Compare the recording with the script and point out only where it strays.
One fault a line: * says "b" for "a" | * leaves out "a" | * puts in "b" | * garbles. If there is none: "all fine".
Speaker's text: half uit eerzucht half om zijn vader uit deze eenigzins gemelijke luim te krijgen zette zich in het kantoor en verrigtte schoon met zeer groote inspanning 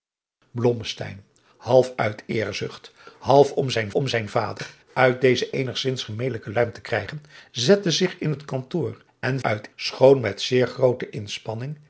* puts in "om zijn"
* says "uit" for "verrigtte"